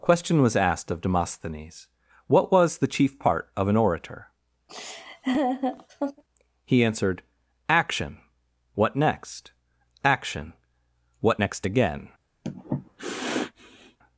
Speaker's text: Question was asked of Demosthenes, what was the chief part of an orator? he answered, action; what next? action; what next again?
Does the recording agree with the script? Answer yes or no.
yes